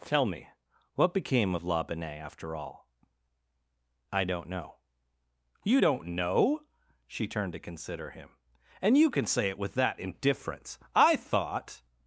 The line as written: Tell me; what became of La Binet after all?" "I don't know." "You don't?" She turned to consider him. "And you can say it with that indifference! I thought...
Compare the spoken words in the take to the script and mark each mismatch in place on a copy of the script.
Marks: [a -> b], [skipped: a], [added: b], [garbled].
Tell me; what became of La Binet after all?" "I don't know." "You don't?" [added: know] She turned to consider him. "And you can say it with that indifference! I thought...